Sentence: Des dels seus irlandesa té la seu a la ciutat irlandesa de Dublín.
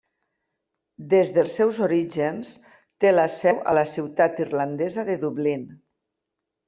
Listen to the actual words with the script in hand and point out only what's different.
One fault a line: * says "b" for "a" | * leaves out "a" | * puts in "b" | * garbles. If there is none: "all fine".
* says "orígens" for "irlandesa"